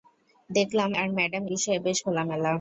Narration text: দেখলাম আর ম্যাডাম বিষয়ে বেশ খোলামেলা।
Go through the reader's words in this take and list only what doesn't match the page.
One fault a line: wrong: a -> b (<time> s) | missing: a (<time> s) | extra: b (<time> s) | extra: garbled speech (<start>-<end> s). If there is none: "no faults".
no faults